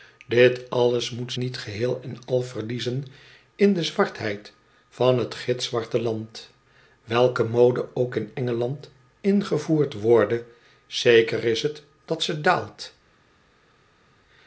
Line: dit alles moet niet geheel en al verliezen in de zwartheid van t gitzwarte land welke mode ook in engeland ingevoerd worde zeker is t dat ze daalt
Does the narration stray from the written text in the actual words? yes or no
no